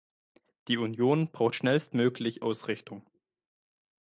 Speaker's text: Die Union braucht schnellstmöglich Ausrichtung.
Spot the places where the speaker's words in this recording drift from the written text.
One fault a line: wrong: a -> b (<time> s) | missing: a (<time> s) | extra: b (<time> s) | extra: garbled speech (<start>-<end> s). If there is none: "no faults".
no faults